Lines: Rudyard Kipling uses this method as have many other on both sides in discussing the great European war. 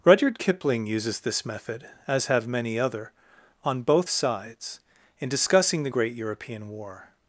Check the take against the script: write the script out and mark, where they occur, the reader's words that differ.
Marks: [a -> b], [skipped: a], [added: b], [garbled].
Rudyard Kipling uses this method as have many other on both sides in discussing the great European war.